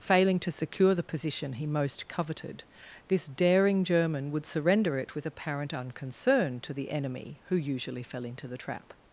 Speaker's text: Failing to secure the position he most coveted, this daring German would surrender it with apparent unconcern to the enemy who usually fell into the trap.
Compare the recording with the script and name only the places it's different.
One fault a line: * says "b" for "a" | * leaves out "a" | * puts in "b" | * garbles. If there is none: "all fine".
all fine